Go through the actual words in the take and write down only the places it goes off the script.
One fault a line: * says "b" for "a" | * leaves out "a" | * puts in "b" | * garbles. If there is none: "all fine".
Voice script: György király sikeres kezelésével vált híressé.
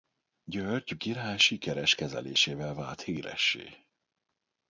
all fine